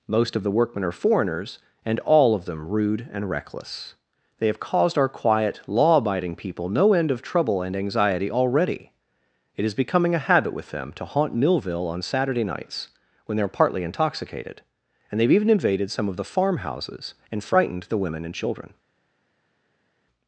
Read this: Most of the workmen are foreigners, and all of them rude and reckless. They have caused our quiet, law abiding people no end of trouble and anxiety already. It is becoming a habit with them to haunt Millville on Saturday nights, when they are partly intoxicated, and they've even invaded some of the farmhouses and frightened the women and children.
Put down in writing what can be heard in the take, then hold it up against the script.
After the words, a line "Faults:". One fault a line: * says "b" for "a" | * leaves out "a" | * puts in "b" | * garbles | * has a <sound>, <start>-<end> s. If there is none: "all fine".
Most of the workmen are foreigners, and all of them rude and reckless. They have caused our quiet, law abiding people no end of trouble and anxiety already. It is becoming a habit with them to haunt Millville on Saturday nights, when they are partly intoxicated, and they've even invaded some of the farmhouses and frightened the women and children.
Faults:
all fine